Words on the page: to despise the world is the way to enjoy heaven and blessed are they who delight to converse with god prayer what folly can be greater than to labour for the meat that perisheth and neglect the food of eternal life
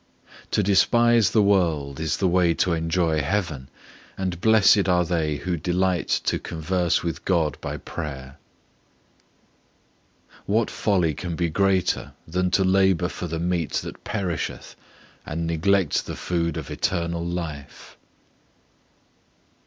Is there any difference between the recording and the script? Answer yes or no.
yes